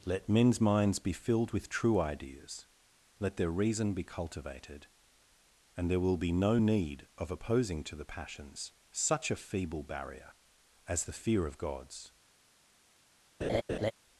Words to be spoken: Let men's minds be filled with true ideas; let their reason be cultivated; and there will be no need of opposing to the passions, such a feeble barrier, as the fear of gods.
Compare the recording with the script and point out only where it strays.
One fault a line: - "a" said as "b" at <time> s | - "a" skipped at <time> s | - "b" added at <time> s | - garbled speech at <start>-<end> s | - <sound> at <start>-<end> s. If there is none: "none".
- laugh at 13.4-13.9 s